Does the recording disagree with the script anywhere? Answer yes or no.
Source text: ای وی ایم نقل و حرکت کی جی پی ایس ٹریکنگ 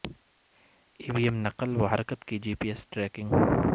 no